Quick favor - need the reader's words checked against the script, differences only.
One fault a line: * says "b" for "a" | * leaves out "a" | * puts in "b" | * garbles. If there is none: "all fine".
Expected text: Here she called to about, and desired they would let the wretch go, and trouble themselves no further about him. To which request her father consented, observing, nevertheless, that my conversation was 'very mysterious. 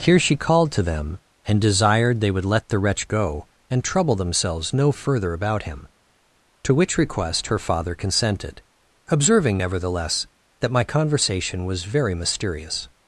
* says "them" for "about"